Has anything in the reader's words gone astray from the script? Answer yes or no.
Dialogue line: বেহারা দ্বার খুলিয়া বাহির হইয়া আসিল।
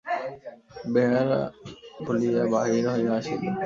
yes